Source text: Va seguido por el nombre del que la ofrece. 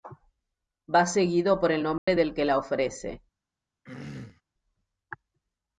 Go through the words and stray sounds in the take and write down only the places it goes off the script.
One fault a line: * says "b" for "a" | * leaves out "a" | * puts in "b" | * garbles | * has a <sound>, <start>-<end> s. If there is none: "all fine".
* has a dropout, 2.0-2.1 s
* has a throat clearing, 3.8-4.4 s